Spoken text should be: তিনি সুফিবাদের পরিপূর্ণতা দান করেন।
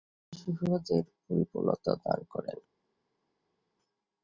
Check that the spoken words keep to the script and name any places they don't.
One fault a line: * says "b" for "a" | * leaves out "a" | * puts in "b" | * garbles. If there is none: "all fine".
all fine